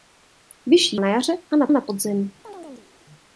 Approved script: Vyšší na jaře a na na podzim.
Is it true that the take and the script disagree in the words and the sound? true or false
true